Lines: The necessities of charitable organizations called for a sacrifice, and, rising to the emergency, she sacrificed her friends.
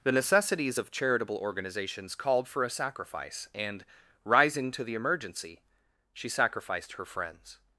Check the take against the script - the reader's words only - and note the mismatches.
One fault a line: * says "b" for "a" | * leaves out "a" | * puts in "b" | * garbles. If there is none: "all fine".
all fine